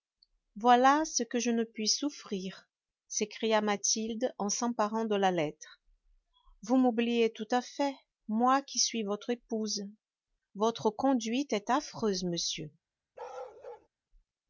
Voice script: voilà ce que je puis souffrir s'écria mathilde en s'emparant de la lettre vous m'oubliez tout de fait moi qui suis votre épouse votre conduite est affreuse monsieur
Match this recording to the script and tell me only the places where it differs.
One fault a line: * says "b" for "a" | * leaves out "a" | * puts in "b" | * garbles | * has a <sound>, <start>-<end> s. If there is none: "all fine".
* puts in "ne"
* says "à" for "de"
* has a bark, 13.2-13.9 s